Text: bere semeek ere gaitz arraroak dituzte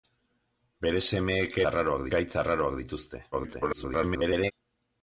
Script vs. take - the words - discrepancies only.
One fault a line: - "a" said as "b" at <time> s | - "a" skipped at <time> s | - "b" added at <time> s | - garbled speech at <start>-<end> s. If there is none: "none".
- "ere" said as "arraroak" at 1.7 s
- garbled speech at 3.3-4.5 s